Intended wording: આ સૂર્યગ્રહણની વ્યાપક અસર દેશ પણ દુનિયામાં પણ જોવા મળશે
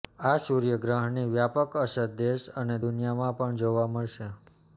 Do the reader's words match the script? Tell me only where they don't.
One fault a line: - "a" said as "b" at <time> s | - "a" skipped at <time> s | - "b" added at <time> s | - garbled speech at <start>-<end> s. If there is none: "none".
- "પણ" said as "અને" at 2.6 s